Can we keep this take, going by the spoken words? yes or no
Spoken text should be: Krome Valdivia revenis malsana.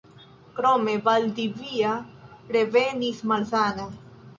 yes